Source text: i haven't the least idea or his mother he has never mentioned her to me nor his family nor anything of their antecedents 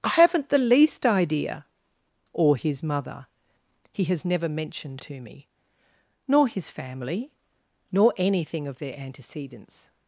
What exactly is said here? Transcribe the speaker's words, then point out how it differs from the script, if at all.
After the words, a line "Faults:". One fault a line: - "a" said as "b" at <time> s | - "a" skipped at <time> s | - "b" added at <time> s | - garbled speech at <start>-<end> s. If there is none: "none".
i haven't the least idea or his mother he has never mentioned to me nor his family nor anything of their antecedents
Faults:
- "her" skipped at 5.0 s